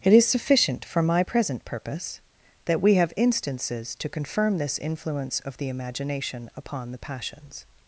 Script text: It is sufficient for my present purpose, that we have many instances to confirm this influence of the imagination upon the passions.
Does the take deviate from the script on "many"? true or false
true